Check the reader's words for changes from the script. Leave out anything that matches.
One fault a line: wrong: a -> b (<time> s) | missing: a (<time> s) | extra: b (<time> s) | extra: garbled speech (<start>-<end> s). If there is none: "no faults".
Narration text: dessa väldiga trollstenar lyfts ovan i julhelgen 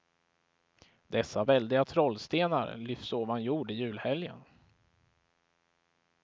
extra: jord (3.4 s)